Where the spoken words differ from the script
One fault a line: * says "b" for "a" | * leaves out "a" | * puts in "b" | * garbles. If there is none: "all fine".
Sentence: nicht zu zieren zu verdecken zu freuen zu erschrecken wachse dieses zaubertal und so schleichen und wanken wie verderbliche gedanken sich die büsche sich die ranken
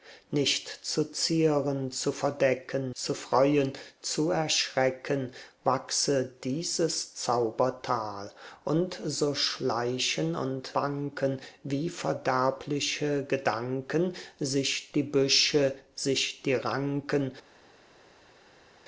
all fine